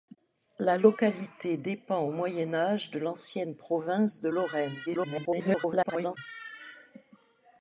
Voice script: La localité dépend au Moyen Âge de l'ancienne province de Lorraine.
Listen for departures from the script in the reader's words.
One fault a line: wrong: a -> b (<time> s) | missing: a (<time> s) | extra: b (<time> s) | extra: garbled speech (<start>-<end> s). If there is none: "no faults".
extra: garbled speech (4.9-6.2 s)